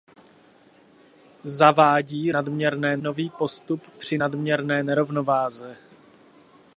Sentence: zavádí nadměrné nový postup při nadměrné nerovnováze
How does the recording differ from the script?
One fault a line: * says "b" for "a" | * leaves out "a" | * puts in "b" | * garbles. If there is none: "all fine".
all fine